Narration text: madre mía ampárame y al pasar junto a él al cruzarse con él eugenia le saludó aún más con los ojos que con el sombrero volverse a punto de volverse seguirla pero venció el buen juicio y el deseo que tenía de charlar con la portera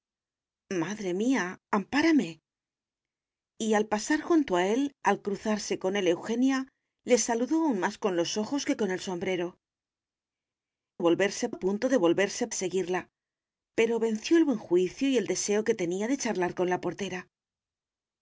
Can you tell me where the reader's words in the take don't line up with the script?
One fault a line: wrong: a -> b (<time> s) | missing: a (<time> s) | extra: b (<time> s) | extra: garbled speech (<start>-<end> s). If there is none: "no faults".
no faults